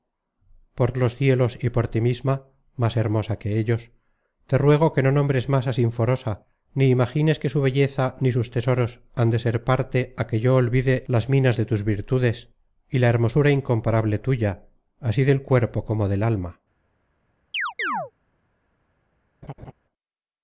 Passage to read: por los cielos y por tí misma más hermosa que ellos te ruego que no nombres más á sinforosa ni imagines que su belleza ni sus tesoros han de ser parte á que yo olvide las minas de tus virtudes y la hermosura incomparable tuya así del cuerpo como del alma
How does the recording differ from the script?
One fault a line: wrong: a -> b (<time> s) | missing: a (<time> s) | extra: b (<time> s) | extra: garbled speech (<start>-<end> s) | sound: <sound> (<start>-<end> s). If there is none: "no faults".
sound: chirp (17.5-18.1 s)
sound: laugh (19.4-19.7 s)